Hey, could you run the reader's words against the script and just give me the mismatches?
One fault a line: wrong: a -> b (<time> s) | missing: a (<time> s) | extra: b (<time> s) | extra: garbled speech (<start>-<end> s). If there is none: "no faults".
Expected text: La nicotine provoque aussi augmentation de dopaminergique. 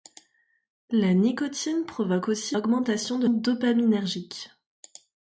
no faults